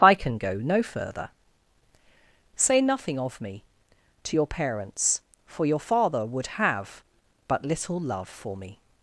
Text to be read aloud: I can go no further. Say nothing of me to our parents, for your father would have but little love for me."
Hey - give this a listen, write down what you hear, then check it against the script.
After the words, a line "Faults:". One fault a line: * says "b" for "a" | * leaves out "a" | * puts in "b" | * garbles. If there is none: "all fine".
I can go no further. Say nothing of me to your parents, for your father would have but little love for me."
Faults:
* says "your" for "our"